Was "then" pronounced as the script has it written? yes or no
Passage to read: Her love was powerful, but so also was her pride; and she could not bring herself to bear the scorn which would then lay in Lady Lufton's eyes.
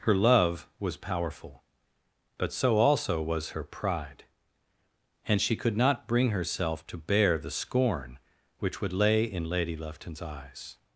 no